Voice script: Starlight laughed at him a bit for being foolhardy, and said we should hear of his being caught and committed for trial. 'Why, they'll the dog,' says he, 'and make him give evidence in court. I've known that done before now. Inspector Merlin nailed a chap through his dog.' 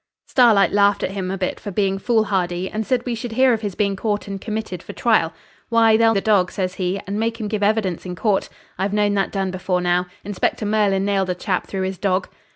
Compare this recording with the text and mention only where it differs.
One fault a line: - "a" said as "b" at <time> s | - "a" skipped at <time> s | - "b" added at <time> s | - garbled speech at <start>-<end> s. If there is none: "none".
none